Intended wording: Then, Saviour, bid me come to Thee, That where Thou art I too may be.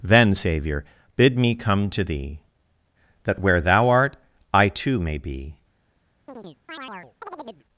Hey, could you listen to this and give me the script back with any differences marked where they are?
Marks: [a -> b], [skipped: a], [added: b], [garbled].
Then, Saviour, bid me come to Thee, That where Thou art I too may be.